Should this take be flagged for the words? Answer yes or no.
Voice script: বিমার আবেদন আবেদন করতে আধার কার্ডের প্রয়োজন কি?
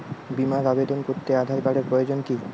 yes